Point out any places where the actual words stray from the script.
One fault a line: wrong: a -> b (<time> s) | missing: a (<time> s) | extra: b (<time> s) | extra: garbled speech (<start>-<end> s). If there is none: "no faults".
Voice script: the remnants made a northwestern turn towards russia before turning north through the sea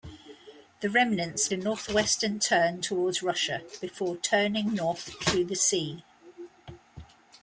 missing: made (1.5 s)